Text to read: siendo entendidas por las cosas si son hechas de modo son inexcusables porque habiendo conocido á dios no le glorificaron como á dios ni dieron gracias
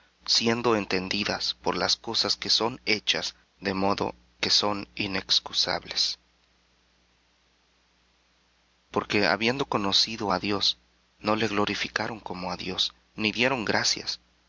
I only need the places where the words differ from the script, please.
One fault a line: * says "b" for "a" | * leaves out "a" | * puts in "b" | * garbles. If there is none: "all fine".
* says "que" for "si"
* puts in "que"